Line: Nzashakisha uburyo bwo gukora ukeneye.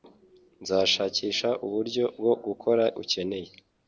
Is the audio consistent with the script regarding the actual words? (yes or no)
yes